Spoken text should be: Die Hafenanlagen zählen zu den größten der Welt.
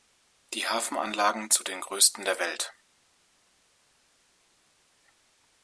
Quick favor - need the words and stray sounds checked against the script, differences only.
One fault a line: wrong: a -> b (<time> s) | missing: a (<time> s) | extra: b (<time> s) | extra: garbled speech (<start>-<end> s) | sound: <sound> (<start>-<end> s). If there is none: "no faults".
missing: zählen (1.5 s)